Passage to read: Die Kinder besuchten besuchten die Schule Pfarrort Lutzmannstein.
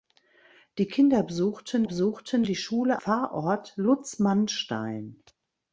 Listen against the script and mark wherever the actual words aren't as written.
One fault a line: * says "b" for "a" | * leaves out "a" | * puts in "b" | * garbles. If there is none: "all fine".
all fine